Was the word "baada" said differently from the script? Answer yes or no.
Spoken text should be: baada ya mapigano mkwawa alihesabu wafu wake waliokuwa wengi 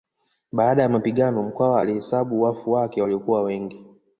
no